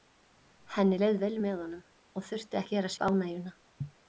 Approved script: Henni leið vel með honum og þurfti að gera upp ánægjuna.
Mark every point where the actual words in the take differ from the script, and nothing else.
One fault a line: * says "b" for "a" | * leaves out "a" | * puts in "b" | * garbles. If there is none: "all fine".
all fine